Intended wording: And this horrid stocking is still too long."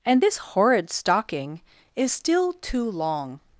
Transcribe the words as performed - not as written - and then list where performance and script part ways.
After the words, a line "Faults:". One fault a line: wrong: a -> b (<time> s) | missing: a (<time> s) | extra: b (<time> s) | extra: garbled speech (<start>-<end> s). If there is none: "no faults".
And this horrid stocking is still too long."
Faults:
no faults